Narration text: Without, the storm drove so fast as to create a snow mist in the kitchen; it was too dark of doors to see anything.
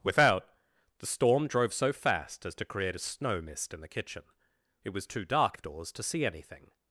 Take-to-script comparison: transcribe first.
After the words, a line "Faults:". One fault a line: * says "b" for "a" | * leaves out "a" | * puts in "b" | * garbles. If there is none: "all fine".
Without, the storm drove so fast as to create a snow mist in the kitchen; it was too dark of doors to see anything.
Faults:
all fine